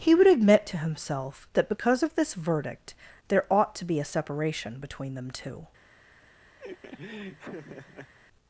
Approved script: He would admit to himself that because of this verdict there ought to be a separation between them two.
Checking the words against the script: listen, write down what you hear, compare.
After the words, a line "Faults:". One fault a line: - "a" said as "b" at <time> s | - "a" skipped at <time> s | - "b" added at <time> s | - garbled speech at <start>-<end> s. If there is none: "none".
He would admit to himself that because of this verdict there ought to be a separation between them two.
Faults:
none